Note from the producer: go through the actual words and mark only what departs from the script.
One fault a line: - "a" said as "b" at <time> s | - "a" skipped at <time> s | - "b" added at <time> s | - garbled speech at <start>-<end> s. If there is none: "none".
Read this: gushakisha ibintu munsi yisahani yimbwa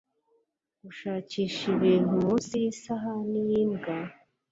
none